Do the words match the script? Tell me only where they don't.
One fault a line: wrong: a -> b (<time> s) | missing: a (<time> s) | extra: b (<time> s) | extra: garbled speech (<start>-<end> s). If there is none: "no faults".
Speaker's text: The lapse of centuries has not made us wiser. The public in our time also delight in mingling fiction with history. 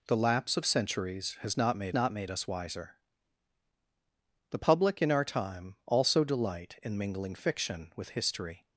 extra: not made (1.9 s)